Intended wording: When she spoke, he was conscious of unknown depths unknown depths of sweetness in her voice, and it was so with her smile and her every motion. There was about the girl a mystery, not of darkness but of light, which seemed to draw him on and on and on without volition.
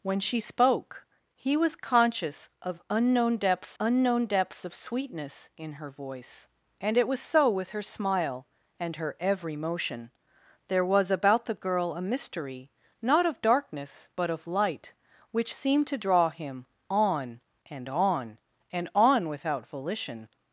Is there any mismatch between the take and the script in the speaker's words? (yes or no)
no